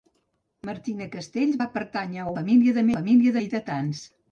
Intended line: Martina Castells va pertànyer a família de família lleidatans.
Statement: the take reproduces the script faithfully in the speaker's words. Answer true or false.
true